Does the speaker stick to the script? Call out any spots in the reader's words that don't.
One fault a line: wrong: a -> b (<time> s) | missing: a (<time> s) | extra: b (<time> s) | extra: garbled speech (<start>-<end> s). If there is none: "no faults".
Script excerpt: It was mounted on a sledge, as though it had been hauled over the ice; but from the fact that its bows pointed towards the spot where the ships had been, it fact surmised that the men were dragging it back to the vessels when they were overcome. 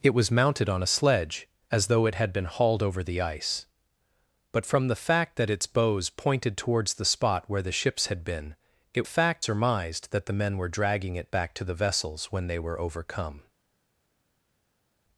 no faults